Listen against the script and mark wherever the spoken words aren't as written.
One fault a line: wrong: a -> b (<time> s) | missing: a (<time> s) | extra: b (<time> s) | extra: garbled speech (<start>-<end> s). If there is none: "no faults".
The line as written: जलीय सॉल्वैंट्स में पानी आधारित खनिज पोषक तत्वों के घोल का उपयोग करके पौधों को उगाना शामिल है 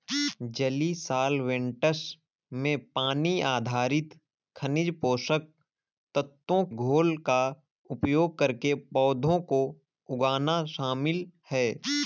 missing: के (6.6 s)